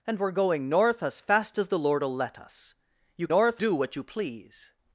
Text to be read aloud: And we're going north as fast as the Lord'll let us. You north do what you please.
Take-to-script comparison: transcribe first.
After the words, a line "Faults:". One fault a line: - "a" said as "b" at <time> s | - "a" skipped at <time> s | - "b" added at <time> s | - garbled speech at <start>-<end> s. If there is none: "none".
And we're going north as fast as the Lord'll let us. You north do what you please.
Faults:
none